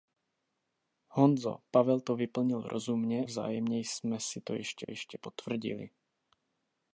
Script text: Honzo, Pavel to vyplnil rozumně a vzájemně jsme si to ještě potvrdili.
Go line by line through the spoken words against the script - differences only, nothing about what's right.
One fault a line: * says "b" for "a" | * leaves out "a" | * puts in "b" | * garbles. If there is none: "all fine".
* leaves out "a"
* puts in "ještě"